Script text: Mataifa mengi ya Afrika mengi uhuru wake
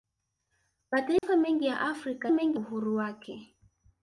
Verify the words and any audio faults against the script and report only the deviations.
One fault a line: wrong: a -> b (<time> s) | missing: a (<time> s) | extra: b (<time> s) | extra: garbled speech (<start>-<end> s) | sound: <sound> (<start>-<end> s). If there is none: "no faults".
sound: dropout (1.2-1.2 s)